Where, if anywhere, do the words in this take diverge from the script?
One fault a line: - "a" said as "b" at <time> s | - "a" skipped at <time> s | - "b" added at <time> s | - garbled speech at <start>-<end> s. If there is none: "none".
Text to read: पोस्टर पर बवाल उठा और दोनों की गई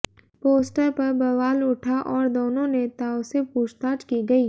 - "नेताओं से पूछताछ" added at 2.7 s